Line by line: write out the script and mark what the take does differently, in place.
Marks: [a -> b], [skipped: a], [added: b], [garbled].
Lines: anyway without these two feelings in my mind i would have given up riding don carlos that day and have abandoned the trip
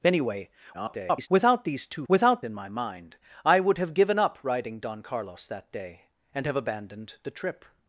anyway [garbled] without these two [feelings -> without] in my mind i would have given up riding don carlos that day and have abandoned the trip